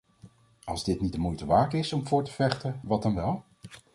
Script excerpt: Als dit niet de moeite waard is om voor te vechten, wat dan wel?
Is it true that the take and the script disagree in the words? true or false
false